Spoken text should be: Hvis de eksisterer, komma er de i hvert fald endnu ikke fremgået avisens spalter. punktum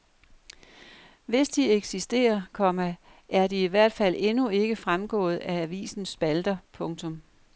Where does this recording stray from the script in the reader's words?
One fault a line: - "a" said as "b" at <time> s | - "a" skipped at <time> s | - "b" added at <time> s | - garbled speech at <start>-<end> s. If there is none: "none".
- "af" added at 5.4 s